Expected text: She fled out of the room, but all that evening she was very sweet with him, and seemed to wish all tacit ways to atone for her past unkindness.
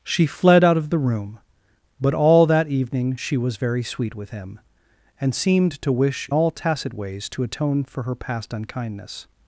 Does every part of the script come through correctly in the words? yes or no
yes